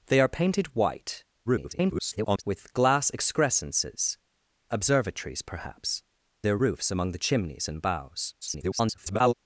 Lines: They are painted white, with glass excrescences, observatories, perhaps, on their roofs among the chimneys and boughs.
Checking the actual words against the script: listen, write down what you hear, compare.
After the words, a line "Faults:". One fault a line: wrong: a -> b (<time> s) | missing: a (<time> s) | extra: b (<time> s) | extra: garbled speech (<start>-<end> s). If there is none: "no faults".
They are painted white, [garbled] with glass excrescences, observatories, perhaps, their roofs among the chimneys and boughs. [garbled]
Faults:
extra: garbled speech (1.4-2.4 s)
missing: on (6.0 s)
extra: garbled speech (8.4-9.3 s)